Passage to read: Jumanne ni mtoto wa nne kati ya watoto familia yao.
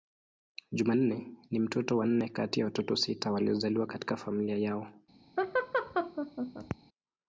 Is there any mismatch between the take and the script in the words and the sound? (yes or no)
yes